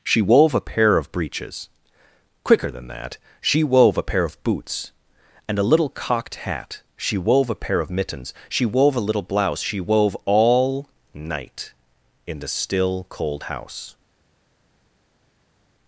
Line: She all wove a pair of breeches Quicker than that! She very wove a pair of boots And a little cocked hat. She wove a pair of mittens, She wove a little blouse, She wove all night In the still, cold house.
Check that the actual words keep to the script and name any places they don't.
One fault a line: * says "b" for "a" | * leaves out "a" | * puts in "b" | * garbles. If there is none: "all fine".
* leaves out "all"
* leaves out "very"